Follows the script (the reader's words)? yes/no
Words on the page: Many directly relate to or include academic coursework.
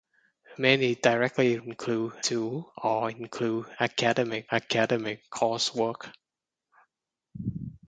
no